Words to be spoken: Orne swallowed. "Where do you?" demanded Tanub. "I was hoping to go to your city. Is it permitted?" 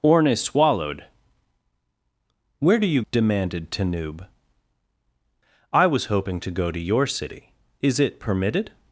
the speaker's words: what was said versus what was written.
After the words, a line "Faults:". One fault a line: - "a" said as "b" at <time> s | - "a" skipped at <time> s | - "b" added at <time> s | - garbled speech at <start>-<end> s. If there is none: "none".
Orne swallowed. "Where do you?" demanded Tanub. "I was hoping to go to your city. Is it permitted?"
Faults:
none